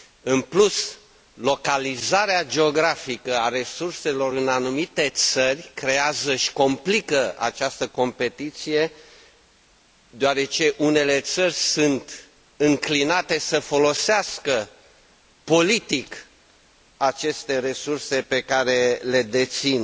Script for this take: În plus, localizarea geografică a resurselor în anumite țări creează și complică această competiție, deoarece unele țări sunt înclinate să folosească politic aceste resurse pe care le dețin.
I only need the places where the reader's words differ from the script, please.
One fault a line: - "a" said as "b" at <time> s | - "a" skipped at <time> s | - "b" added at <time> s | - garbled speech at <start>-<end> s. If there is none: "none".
none